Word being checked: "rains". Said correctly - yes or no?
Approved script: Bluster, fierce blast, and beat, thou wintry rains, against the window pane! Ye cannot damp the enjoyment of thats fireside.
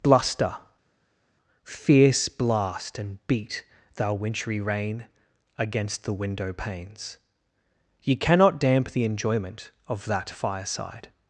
no